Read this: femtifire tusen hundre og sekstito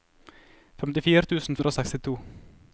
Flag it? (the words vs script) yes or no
no